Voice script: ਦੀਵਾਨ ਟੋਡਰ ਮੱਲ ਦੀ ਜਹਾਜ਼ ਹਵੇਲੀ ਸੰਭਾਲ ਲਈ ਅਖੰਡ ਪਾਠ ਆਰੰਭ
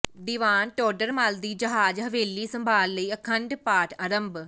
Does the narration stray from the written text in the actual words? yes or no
no